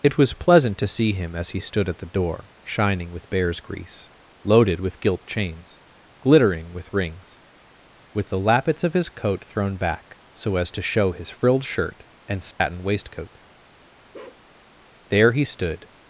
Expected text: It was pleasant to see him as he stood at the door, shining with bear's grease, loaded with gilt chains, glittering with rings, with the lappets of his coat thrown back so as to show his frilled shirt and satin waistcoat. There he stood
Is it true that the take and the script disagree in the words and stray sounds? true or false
true